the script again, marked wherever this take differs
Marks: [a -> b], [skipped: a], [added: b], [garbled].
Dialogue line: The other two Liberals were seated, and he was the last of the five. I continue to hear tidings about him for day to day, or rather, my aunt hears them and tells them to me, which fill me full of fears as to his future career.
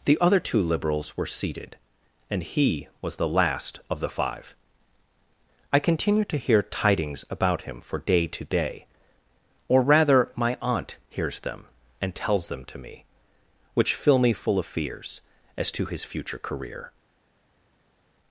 The other two Liberals were seated, and he was the last of the five. I continue to hear tidings about him for day to day, or rather, my aunt hears them and tells them to me, which fill me full of fears as to his future career.